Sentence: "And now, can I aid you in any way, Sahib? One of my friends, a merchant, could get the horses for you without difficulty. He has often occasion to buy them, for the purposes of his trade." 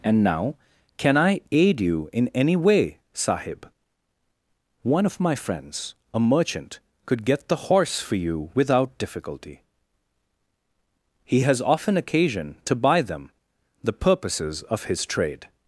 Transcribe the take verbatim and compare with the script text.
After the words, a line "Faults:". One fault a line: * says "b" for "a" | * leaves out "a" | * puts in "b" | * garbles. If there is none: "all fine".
"And now, can I aid you in any way, Sahib? One of my friends, a merchant, could get the horse for you without difficulty. He has often occasion to buy them, the purposes of his trade."
Faults:
* says "horse" for "horses"
* leaves out "for"